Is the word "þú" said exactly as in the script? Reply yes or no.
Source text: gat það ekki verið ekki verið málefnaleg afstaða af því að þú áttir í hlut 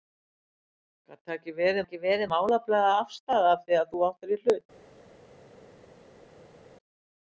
yes